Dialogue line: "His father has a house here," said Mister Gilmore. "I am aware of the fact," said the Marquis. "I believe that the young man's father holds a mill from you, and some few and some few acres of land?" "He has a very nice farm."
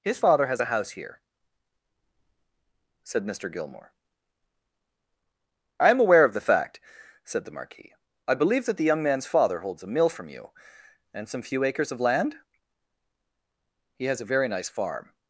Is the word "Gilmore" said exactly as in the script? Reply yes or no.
yes